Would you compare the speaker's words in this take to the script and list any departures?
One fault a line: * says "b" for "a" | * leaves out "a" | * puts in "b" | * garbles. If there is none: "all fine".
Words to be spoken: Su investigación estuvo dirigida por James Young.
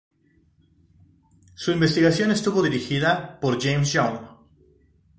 all fine